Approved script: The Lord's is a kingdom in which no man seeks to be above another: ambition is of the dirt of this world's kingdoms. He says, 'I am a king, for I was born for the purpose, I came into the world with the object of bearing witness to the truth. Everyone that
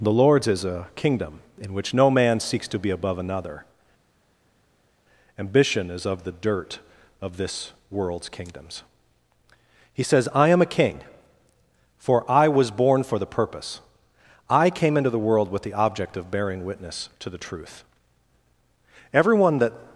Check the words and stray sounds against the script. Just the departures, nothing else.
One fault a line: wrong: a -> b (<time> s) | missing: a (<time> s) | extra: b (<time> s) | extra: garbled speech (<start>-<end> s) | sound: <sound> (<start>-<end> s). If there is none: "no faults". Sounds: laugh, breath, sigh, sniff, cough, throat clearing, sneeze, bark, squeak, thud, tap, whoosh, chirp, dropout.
no faults